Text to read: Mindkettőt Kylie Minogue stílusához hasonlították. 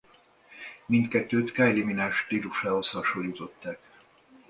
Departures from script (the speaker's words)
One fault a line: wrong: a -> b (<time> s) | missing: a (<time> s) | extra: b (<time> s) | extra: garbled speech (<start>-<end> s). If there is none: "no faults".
no faults